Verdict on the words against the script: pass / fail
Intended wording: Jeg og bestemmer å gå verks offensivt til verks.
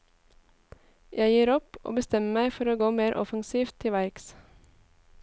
fail